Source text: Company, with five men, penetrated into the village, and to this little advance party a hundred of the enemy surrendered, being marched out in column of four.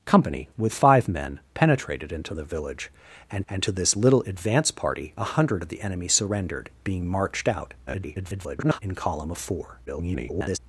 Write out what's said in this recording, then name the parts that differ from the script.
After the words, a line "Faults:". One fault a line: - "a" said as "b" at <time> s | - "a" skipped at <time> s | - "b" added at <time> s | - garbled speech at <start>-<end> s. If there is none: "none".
Company, with five men, penetrated into the village, and and to this little advance party a hundred of the enemy surrendered, being marched out [garbled] in column of four. [garbled]
Faults:
- "and" added at 3.5 s
- garbled speech at 7.9-8.8 s
- garbled speech at 9.9-10.6 s